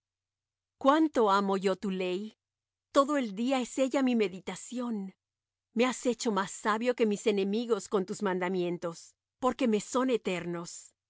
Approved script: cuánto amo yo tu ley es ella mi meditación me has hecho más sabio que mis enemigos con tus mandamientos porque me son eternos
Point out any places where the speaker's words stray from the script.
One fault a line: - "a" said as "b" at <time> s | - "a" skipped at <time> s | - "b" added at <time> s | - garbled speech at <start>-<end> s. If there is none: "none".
- "todo el día" added at 2.9 s